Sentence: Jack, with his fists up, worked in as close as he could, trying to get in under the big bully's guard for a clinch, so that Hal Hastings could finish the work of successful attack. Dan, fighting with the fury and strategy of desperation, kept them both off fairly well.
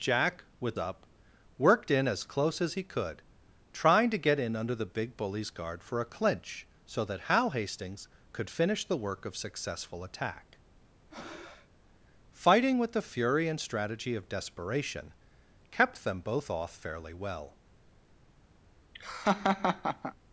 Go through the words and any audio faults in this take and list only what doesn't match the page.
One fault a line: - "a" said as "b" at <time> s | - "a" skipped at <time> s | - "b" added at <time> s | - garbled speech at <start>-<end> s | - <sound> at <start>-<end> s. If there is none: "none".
- "his fists" skipped at 0.8 s
- "Dan" skipped at 10.6 s
- breath at 11.1-11.7 s
- laugh at 18.9-20.1 s